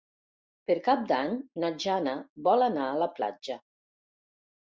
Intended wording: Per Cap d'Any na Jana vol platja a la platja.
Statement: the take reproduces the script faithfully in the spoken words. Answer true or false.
false